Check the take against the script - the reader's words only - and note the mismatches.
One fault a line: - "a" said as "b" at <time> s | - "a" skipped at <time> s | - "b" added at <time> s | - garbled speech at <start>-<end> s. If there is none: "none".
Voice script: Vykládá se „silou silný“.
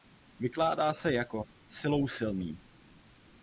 - "jako" added at 1.1 s